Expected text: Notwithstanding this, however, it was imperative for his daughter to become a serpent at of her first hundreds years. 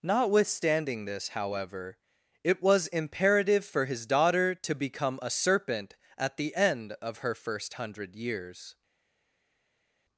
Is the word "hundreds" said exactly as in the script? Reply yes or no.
no